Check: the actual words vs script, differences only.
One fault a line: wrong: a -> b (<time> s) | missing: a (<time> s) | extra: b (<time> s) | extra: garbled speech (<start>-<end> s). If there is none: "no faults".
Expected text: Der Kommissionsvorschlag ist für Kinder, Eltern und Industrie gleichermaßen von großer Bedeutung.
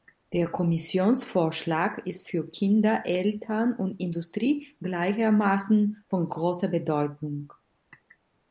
no faults